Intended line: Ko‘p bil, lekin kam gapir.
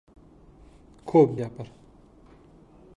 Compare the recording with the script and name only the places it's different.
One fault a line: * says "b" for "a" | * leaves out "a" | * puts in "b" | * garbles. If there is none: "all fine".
* leaves out "bil lekin kam"